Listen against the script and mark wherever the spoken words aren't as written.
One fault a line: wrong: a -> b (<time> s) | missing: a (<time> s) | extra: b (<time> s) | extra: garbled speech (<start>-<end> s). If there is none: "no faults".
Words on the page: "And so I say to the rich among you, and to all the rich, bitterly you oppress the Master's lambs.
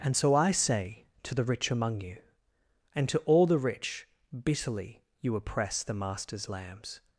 no faults